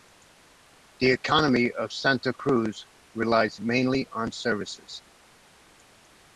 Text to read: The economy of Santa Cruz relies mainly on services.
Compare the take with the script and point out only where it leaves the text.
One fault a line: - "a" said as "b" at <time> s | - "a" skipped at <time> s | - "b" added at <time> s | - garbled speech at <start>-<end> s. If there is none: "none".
none